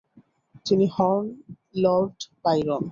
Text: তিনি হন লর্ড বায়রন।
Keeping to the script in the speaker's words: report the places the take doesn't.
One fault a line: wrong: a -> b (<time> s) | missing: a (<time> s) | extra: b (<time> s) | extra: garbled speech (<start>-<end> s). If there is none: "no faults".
no faults